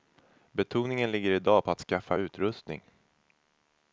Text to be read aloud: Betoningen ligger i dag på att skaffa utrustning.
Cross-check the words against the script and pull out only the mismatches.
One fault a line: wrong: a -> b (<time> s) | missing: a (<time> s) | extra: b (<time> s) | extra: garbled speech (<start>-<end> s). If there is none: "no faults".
no faults